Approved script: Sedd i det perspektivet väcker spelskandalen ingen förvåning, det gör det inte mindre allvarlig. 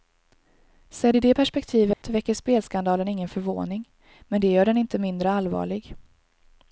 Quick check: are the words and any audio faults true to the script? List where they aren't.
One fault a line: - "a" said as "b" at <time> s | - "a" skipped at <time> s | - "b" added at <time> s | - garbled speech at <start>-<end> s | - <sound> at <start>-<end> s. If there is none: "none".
- dropout at 1.9-2.0 s
- "men" added at 4.3 s
- "det" said as "den" at 4.7 s